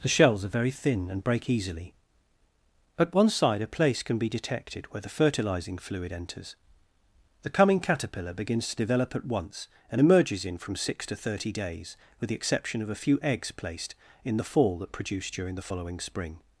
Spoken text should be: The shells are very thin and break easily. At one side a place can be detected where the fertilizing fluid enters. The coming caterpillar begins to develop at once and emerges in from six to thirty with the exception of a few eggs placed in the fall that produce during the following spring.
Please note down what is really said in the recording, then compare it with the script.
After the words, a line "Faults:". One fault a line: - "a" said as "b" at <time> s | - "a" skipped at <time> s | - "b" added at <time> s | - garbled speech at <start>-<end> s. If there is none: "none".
The shells are very thin and break easily. At one side a place can be detected where the fertilizing fluid enters. The coming caterpillar begins to develop at once and emerges in from six to thirty days, with the exception of a few eggs placed in the fall that produce during the following spring.
Faults:
- "days" added at 11.5 s